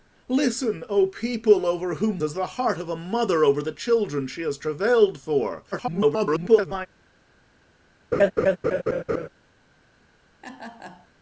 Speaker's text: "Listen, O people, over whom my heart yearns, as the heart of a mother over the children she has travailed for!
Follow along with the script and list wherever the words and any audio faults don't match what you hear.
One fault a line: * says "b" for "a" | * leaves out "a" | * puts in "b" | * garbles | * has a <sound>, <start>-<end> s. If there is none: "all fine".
* leaves out "my heart yearns"
* garbles
* has a laugh, 8.1-9.3 s
* has a laugh, 10.4-11.1 s